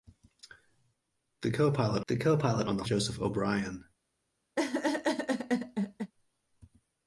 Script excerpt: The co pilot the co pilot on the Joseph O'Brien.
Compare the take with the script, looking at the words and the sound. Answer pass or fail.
fail